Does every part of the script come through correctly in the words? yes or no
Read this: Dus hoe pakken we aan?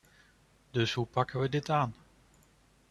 no